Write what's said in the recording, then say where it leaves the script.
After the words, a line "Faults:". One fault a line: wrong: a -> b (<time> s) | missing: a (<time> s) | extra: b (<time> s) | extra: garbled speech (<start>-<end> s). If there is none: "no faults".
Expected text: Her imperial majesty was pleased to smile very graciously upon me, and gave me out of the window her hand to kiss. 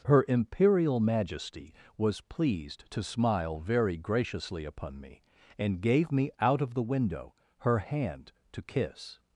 Her imperial majesty was pleased to smile very graciously upon me, and gave me out of the window her hand to kiss.
Faults:
no faults